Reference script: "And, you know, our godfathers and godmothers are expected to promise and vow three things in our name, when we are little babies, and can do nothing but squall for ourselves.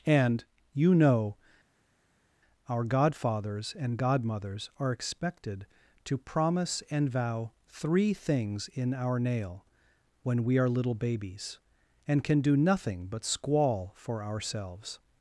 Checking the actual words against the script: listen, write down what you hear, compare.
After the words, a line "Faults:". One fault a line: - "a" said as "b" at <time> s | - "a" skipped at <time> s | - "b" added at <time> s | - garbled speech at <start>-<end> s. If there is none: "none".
"And, you know, our godfathers and godmothers are expected to promise and vow three things in our nail, when we are little babies, and can do nothing but squall for ourselves.
Faults:
- "name" said as "nail" at 9.2 s